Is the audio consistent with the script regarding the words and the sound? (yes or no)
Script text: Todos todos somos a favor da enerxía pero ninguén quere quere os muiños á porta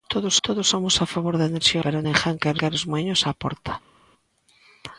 yes